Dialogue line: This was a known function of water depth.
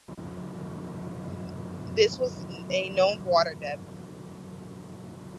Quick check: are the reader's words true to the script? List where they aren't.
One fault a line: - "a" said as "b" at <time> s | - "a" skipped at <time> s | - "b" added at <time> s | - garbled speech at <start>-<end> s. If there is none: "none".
- "function" skipped at 3.2 s